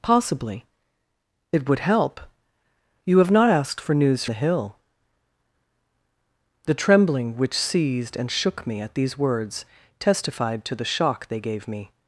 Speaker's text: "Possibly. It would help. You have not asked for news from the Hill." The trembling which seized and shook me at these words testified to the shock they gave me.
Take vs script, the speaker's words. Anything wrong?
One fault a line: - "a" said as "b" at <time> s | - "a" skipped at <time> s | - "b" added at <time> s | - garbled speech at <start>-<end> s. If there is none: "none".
- "from" skipped at 4.2 s